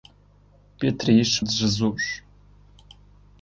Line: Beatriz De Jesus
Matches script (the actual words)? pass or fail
pass